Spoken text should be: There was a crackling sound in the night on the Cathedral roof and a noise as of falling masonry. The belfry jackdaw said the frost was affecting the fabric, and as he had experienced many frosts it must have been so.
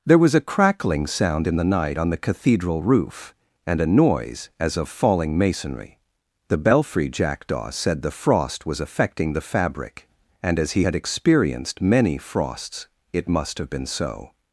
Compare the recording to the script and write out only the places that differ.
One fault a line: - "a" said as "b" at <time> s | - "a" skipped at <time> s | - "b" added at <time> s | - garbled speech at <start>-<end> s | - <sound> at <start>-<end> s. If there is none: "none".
none